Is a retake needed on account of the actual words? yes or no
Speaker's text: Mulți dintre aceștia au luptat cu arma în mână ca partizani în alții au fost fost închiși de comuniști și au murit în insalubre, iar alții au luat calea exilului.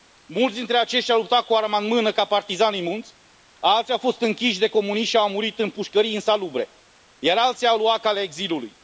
yes